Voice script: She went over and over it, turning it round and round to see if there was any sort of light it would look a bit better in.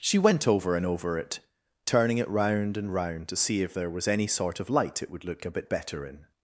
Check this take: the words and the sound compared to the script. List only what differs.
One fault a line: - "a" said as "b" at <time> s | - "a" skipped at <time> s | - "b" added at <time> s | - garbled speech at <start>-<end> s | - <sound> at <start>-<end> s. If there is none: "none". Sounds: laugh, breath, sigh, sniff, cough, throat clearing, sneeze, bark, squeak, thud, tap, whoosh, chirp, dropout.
none